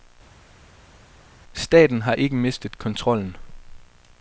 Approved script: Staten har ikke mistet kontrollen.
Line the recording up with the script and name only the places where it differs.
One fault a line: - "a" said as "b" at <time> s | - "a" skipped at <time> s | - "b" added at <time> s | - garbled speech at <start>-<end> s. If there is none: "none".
none